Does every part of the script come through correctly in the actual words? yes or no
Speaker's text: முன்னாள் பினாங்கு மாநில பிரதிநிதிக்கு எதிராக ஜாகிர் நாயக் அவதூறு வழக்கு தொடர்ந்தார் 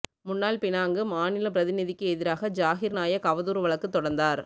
yes